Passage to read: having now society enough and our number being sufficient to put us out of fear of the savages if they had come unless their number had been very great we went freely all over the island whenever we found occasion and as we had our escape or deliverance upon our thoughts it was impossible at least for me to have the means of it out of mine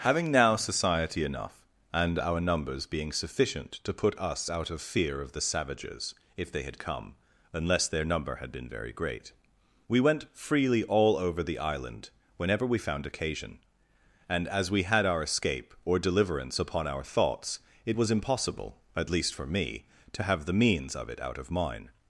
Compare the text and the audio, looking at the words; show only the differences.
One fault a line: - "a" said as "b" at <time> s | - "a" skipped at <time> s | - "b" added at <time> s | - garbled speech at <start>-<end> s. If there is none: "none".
- "number" said as "numbers" at 2.4 s